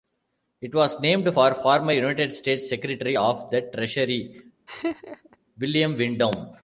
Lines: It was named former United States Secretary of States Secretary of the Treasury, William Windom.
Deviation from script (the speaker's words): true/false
true